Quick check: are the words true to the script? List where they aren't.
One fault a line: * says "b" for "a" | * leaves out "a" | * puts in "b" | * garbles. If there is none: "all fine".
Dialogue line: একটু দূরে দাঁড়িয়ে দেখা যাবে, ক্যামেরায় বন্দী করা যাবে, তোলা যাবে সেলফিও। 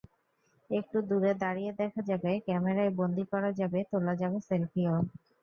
all fine